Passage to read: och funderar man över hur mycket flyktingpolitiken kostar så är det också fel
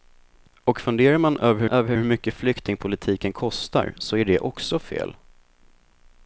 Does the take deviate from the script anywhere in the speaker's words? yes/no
yes